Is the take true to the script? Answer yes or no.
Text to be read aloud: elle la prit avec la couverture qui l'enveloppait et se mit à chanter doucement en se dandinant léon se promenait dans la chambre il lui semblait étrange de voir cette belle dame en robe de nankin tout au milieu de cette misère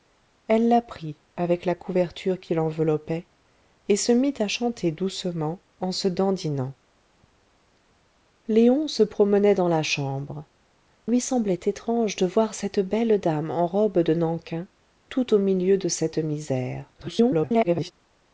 no